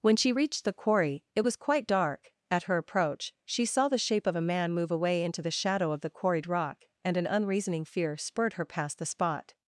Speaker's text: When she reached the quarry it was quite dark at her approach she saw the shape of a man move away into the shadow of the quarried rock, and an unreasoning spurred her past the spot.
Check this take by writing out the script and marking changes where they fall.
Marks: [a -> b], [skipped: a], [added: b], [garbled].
When she reached the quarry it was quite dark at her approach she saw the shape of a man move away into the shadow of the quarried rock, and an unreasoning [added: fear] spurred her past the spot.